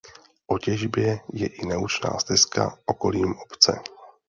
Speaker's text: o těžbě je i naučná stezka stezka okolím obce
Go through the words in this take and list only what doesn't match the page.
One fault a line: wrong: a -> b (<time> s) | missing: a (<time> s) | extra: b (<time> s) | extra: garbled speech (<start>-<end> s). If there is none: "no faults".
missing: stezka (2.8 s)